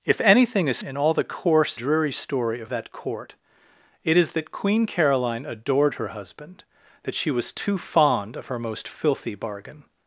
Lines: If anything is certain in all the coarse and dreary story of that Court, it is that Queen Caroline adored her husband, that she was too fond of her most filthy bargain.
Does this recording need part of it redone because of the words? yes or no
yes